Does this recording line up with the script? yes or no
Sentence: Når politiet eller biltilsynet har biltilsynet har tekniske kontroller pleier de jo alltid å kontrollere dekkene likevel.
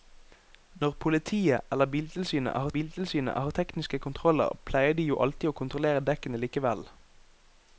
yes